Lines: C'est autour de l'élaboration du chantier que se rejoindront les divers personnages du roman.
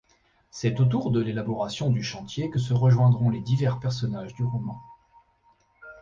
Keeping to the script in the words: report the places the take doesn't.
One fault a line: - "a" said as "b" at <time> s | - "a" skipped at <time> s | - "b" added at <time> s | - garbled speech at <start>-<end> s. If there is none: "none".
none